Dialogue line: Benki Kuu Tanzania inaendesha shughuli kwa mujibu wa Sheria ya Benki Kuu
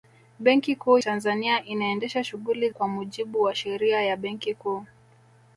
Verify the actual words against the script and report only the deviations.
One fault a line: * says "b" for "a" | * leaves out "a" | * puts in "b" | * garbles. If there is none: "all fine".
all fine